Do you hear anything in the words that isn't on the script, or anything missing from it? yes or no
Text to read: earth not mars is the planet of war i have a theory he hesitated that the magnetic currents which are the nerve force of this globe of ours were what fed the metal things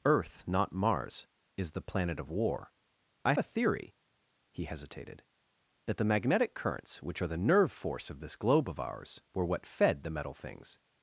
yes